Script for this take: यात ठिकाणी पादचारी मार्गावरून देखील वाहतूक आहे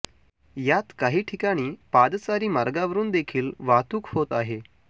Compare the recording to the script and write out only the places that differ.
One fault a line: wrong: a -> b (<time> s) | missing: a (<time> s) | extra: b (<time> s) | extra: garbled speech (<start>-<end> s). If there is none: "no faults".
extra: काही (1.0 s)
extra: होत (4.1 s)